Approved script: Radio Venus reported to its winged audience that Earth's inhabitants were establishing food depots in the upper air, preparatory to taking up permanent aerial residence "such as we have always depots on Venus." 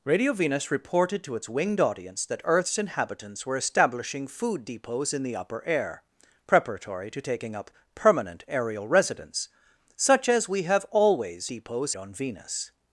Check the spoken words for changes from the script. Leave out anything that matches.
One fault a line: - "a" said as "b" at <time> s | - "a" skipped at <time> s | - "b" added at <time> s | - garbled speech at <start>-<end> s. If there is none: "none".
none